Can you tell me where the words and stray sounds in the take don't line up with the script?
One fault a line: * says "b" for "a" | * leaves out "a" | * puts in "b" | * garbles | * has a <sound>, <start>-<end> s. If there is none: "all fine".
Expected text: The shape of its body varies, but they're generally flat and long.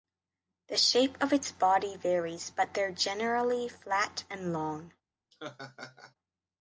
* has a laugh, 5.3-6.1 s